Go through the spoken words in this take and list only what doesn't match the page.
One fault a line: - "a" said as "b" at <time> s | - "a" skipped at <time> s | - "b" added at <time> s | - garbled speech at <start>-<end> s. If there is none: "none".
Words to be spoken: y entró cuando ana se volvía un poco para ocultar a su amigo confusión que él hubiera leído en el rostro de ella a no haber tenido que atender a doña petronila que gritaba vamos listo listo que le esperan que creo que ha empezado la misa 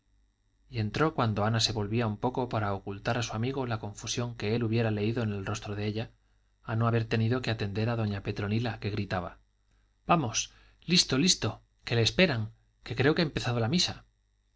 - "la" added at 3.7 s